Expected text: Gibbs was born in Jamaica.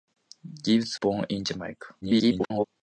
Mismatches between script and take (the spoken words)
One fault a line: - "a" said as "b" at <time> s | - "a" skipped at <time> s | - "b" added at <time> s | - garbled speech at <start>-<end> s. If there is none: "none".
- "was" skipped at 1.0 s
- garbled speech at 2.0-2.6 s